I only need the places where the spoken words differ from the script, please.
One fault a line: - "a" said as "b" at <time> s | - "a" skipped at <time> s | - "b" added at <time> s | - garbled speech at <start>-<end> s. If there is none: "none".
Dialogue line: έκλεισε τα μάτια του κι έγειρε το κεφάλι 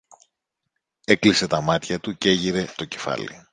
none